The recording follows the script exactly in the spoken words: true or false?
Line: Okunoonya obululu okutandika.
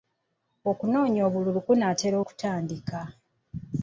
false